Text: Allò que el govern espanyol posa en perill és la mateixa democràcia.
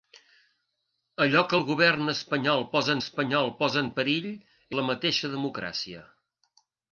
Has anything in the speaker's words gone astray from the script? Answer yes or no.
yes